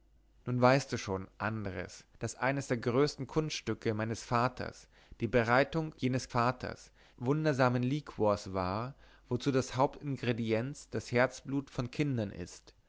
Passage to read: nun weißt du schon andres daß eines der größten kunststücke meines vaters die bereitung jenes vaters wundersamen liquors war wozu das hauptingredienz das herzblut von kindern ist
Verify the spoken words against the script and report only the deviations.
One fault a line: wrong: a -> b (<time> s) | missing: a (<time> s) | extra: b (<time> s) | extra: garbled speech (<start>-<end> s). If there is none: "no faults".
no faults